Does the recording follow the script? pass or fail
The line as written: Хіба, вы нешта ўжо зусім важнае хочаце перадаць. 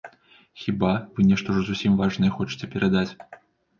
pass